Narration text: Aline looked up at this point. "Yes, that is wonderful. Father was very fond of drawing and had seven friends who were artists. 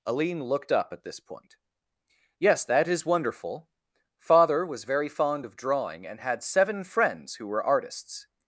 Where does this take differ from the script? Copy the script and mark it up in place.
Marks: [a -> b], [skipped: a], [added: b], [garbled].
Aline looked up at this point. "Yes, that is wonderful. Father was very fond of drawing and had seven friends who were artists.